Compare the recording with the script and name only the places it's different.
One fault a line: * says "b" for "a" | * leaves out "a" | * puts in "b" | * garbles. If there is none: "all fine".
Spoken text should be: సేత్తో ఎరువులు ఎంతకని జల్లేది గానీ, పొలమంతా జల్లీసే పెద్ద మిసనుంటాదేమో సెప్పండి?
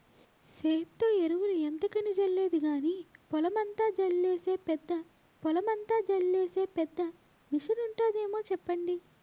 * puts in "పొలమంతా జల్లీసే పెద్ద"